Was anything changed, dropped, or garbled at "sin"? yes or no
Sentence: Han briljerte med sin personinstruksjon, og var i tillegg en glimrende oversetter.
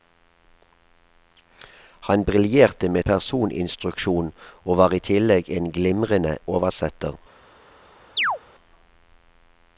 yes